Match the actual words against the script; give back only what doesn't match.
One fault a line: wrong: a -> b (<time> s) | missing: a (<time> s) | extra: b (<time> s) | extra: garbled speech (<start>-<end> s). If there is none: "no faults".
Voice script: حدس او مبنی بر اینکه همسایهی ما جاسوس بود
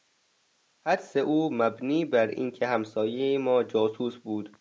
no faults